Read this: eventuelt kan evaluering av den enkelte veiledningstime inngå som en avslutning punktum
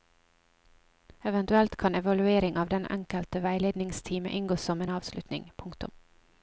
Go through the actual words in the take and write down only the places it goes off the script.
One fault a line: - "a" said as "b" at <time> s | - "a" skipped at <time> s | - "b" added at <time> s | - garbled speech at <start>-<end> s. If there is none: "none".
none